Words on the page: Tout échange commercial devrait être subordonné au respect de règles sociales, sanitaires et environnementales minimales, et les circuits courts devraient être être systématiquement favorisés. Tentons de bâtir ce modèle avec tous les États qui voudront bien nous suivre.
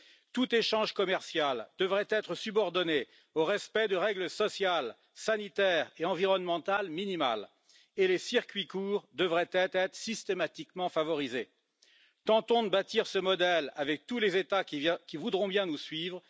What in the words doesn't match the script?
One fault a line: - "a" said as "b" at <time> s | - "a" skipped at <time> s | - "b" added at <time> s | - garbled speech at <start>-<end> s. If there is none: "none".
none